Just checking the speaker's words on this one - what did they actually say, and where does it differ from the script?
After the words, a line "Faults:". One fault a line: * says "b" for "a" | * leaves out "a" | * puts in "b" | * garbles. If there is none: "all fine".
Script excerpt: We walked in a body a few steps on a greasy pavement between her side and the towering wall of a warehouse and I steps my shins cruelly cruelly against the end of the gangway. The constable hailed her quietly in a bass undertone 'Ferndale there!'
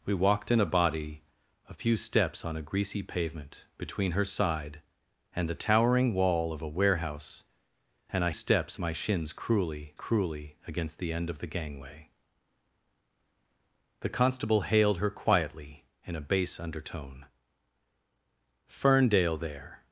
We walked in a body a few steps on a greasy pavement between her side and the towering wall of a warehouse and I steps my shins cruelly cruelly against the end of the gangway. The constable hailed her quietly in a bass undertone 'Ferndale there!'
Faults:
all fine